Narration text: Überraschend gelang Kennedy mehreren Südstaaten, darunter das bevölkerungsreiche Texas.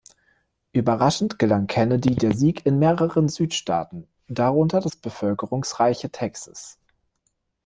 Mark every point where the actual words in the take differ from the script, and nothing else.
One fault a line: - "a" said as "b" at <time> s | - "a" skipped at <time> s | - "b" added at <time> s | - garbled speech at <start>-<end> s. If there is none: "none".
- "der Sieg in" added at 2.1 s